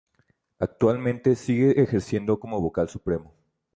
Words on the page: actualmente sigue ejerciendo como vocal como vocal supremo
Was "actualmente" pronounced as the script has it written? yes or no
yes